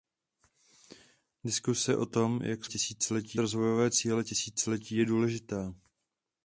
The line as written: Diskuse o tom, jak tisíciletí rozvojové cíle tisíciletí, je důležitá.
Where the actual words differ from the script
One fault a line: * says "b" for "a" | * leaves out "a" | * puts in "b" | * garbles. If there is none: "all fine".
all fine